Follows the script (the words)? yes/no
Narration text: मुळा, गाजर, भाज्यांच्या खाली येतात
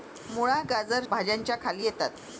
yes